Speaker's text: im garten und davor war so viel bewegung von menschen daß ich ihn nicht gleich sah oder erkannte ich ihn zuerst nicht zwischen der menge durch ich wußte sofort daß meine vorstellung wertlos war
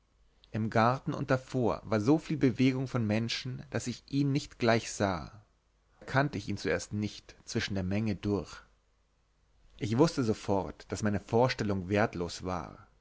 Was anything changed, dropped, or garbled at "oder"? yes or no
yes